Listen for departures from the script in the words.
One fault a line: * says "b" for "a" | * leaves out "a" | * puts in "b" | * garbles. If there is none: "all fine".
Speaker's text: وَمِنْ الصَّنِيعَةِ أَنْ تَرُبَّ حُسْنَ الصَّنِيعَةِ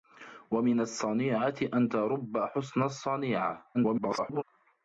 * garbles